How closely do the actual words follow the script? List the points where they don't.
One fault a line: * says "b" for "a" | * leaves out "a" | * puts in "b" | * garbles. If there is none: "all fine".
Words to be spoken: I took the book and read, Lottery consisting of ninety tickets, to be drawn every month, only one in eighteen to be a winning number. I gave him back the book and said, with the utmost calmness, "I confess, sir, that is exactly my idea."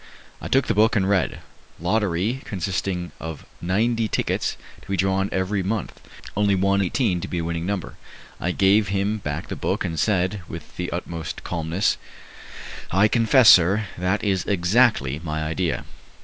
* leaves out "in"